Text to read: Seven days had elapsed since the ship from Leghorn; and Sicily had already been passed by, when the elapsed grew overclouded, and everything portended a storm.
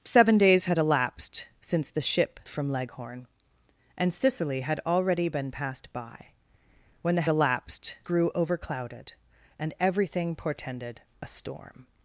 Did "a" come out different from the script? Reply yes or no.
no